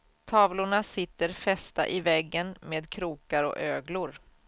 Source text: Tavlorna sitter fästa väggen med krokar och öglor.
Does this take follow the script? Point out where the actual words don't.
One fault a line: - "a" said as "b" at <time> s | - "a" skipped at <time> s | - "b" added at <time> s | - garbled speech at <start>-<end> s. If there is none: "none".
- "i" added at 1.9 s